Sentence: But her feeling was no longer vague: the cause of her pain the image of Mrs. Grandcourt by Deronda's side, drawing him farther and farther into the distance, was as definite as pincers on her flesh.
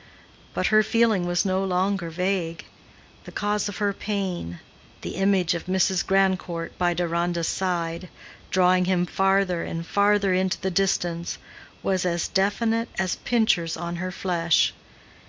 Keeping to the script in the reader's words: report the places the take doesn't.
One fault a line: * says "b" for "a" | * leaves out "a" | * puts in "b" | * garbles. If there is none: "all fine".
all fine